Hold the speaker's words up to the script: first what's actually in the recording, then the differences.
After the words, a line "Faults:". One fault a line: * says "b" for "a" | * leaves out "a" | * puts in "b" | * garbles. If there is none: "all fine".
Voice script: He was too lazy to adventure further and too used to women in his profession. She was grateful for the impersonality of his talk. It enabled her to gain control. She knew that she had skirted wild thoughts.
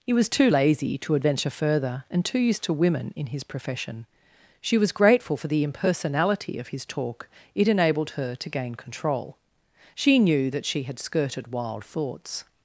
He was too lazy to adventure further and too used to women in his profession. She was grateful for the impersonality of his talk. It enabled her to gain control. She knew that she had skirted wild thoughts.
Faults:
all fine